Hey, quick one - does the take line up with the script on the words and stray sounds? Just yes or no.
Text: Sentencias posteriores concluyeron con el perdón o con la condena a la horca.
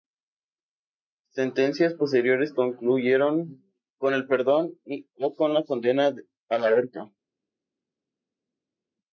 yes